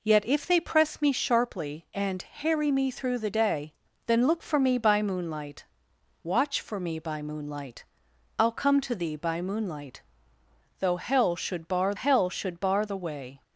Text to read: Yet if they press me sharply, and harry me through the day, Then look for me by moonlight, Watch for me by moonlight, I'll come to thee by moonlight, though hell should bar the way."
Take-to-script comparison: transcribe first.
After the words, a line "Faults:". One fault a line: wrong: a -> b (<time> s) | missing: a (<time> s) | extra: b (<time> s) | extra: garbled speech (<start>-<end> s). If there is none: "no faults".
Yet if they press me sharply, and harry me through the day, Then look for me by moonlight, Watch for me by moonlight, I'll come to thee by moonlight, though hell should bar hell should bar the way."
Faults:
extra: hell should bar (11.9 s)